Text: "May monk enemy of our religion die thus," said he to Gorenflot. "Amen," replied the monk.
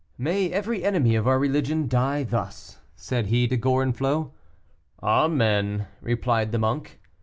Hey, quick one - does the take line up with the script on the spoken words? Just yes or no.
no